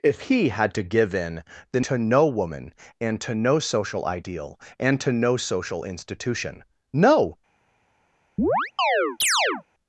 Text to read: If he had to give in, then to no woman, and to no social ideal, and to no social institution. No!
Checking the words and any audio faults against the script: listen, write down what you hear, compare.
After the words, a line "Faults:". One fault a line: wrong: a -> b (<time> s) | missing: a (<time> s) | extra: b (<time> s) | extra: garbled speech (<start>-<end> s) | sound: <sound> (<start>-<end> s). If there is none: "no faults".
If he had to give in, then to no woman, and to no social ideal, and to no social institution. No!
Faults:
sound: chirp (8.4-9.6 s)